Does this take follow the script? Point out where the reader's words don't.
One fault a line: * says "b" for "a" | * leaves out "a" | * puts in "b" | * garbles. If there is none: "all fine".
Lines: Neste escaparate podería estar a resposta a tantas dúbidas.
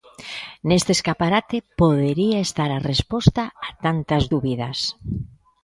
all fine